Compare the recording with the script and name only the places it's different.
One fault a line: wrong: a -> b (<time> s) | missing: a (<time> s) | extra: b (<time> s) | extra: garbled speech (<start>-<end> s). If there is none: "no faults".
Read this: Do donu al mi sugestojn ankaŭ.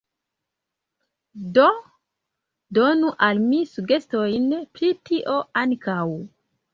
extra: pri tio (4.8 s)